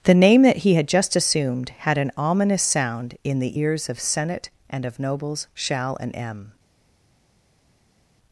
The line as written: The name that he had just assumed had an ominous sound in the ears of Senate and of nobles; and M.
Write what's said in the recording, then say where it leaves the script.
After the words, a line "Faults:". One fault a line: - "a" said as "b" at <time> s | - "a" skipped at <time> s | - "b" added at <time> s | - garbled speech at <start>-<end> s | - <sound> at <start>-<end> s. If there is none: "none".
The name that he had just assumed had an ominous sound in the ears of Senate and of nobles; shall and M.
Faults:
- "shall" added at 5.5 s